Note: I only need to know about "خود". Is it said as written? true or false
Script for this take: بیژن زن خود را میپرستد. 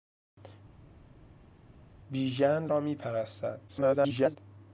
false